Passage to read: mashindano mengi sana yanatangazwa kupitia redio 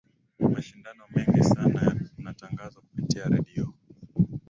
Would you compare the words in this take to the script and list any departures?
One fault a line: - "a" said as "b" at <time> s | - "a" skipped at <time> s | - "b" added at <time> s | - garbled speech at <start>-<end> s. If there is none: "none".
none